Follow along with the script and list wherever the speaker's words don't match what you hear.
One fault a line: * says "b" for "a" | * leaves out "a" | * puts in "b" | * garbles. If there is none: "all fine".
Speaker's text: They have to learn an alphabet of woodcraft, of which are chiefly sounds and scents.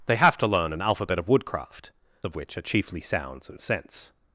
all fine